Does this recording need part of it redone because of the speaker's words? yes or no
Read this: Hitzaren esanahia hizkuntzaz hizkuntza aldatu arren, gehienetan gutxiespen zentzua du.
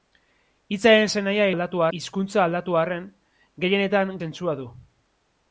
yes